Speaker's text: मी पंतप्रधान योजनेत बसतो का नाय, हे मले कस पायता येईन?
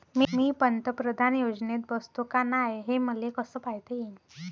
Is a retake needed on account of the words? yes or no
no